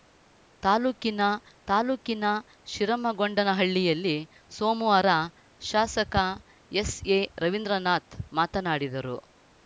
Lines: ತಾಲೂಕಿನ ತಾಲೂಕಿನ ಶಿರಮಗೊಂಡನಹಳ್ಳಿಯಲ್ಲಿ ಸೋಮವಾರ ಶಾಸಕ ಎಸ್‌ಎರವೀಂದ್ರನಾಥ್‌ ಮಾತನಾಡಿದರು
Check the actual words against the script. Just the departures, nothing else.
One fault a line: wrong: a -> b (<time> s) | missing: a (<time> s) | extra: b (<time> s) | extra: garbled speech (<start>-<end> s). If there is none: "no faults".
no faults